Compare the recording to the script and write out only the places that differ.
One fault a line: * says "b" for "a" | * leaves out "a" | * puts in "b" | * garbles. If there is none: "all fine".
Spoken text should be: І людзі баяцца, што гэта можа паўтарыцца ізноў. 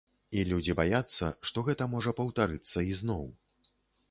all fine